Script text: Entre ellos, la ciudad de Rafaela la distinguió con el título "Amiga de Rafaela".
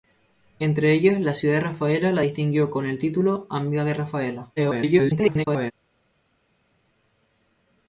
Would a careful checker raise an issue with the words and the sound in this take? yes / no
yes